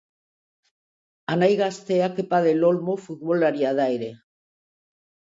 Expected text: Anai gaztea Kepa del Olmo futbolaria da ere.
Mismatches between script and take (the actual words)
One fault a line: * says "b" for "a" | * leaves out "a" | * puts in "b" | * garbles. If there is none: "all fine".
all fine